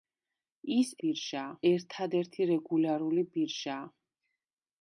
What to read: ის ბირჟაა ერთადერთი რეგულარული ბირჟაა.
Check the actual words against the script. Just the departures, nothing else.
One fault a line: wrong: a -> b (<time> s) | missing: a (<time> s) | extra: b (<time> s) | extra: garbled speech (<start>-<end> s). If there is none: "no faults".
no faults